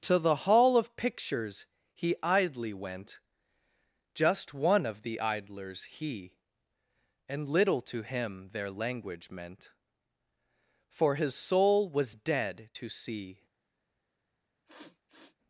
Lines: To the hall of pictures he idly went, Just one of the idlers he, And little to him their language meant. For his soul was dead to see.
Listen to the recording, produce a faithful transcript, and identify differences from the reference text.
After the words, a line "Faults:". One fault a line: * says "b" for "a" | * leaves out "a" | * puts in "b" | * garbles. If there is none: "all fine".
To the hall of pictures he idly went, Just one of the idlers he, And little to him their language meant. For his soul was dead to see.
Faults:
all fine